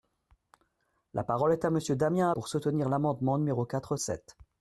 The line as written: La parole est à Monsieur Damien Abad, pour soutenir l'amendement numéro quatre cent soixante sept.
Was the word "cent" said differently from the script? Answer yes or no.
yes